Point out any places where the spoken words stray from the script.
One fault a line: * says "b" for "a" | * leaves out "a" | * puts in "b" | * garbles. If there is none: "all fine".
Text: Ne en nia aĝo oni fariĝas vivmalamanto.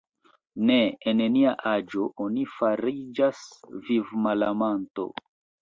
all fine